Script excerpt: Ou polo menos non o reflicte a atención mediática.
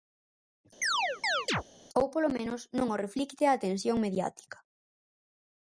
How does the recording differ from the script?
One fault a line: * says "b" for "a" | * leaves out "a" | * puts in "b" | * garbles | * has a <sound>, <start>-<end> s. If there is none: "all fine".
* has a chirp, 0.8-1.6 s